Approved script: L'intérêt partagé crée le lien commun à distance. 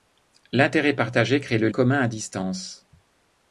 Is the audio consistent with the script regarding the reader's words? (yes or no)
no